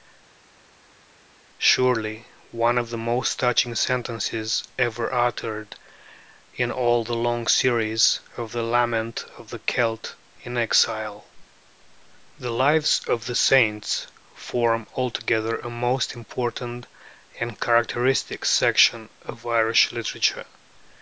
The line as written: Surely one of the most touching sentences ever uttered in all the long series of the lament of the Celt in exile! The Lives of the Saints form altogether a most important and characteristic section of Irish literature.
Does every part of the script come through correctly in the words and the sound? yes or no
yes